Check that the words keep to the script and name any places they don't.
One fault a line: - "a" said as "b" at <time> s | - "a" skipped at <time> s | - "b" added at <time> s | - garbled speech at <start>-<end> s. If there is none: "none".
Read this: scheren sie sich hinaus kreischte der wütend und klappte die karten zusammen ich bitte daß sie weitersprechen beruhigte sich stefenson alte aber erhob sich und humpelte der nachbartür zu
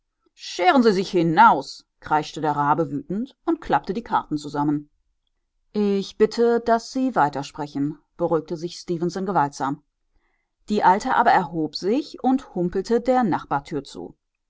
- "rabe" added at 2.5 s
- "gewaltsam die" added at 9.3 s